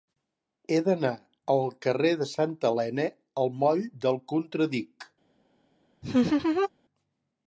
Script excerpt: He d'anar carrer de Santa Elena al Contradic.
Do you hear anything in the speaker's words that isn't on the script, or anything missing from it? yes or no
yes